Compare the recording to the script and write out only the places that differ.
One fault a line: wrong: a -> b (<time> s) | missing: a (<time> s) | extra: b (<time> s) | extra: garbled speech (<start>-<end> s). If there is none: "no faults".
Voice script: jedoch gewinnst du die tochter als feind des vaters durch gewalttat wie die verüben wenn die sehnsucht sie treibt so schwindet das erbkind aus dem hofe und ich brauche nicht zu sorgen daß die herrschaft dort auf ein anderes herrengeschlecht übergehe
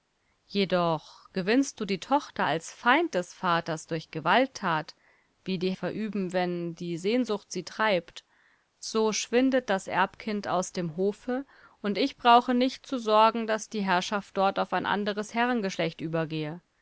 no faults